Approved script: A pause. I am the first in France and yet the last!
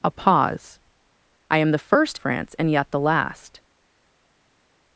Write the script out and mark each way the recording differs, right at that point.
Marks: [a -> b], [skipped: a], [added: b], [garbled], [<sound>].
A pause. I am the first [skipped: in] France and yet the last!